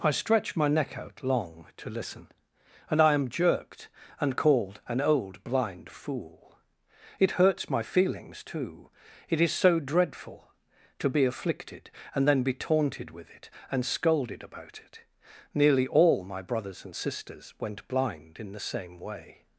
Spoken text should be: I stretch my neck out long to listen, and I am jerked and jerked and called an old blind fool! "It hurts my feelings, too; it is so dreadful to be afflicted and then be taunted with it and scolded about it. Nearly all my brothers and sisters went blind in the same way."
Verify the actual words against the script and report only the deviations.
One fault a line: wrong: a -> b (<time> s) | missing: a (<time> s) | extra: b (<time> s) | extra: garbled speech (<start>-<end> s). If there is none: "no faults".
missing: jerked and (4.3 s)